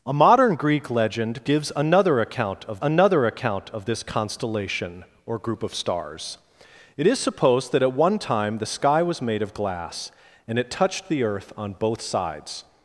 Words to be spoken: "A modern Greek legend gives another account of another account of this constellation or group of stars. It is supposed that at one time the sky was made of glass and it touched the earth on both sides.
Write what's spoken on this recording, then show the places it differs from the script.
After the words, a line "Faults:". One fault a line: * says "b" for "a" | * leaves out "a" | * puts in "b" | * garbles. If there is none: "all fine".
"A modern Greek legend gives another account of another account of this constellation or group of stars. It is supposed that at one time the sky was made of glass and it touched the earth on both sides.
Faults:
all fine